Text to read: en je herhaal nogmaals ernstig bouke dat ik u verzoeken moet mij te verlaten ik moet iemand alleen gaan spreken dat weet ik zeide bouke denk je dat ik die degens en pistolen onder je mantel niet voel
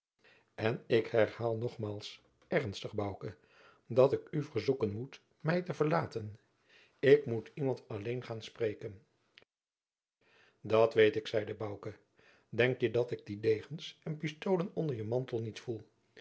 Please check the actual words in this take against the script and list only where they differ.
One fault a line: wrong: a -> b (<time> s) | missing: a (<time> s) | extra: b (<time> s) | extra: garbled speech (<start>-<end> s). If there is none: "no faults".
wrong: je -> ik (0.9 s)